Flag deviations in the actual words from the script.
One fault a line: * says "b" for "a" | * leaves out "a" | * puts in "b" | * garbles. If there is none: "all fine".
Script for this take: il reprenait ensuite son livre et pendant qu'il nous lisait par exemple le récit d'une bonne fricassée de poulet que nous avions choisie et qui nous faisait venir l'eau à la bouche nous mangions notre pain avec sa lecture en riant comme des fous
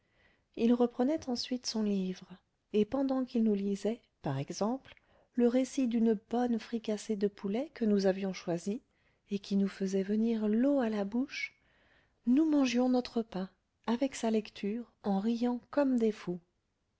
all fine